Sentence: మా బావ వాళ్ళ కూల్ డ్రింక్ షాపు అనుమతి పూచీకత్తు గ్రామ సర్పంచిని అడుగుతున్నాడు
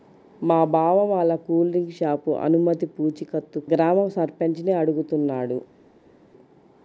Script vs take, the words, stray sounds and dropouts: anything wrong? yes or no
no